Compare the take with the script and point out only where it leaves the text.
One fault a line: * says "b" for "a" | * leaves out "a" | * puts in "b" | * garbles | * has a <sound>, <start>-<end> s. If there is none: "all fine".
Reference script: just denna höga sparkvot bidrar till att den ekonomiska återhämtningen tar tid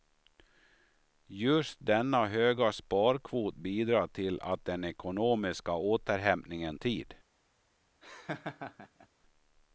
* leaves out "tar"
* has a laugh, 8.0-9.1 s